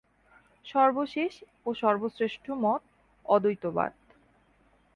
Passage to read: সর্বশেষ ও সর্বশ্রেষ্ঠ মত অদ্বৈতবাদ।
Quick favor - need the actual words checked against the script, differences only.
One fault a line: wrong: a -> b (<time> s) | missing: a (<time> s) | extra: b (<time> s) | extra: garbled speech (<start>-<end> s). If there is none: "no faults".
no faults